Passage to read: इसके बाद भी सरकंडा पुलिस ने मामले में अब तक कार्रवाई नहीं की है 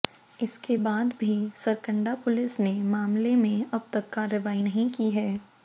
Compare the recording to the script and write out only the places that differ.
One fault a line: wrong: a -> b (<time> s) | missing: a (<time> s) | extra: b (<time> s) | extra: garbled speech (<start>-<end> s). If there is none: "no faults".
no faults